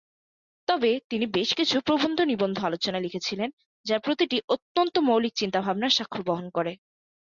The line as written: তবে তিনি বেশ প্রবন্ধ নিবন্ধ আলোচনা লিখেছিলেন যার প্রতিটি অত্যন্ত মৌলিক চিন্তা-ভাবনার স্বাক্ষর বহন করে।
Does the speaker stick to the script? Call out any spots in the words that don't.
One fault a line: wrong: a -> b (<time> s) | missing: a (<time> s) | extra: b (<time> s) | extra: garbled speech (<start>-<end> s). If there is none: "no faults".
extra: কিছু (1.5 s)